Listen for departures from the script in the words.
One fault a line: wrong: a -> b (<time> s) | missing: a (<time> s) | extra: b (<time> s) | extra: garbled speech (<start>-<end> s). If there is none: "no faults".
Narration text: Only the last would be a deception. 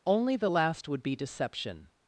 missing: a (1.2 s)